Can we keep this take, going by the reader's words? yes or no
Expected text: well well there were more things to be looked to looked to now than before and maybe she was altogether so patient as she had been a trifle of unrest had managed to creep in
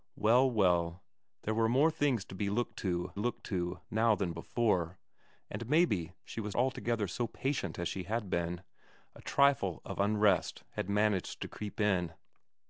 yes